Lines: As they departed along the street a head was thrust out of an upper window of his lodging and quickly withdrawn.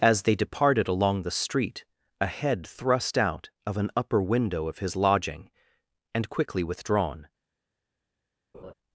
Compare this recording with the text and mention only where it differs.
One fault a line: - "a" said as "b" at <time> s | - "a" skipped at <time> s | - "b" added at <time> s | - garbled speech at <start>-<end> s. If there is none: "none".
- "was" skipped at 2.6 s